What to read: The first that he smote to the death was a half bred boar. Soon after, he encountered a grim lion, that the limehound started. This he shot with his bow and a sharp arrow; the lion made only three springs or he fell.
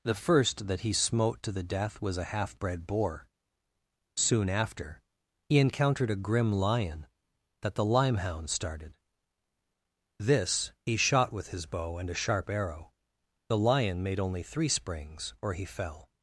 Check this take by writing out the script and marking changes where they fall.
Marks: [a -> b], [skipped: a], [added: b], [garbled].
The first that he smote to the death was a half bred boar. Soon after, he encountered a grim lion, that the limehound started. This he shot with his bow and a sharp arrow; the lion made only three springs or he fell.